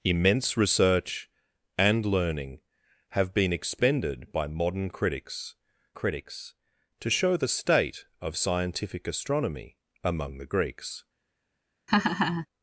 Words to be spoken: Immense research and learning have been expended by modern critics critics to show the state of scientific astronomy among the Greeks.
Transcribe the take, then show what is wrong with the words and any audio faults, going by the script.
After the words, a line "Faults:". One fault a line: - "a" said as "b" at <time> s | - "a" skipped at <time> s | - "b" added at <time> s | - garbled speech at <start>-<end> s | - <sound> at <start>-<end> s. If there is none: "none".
Immense research and learning have been expended by modern critics critics to show the state of scientific astronomy among the Greeks.
Faults:
- laugh at 11.9-12.5 s